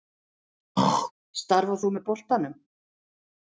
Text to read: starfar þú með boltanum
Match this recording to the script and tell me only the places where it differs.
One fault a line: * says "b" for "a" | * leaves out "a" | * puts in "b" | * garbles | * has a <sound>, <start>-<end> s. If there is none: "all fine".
* has a throat clearing, 0.8-1.1 s